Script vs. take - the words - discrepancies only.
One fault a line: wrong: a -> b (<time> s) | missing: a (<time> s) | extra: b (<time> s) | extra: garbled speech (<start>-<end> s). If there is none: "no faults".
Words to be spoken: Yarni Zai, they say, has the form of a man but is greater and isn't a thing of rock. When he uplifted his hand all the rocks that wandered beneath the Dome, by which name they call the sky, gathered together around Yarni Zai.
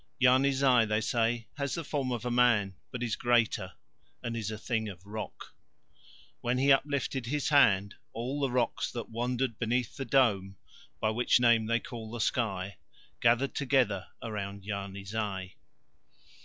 wrong: isn't -> is (4.3 s)